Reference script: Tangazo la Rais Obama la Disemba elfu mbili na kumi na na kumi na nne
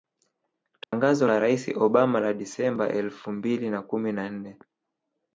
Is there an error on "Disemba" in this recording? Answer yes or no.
no